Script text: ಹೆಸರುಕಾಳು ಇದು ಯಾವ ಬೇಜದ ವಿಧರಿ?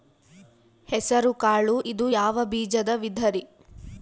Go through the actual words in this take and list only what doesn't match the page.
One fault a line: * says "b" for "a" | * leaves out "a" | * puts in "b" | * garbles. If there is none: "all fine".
all fine